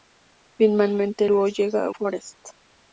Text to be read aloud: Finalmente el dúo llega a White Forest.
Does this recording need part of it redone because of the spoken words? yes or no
yes